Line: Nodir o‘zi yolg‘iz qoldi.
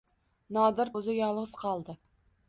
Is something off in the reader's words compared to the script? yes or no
no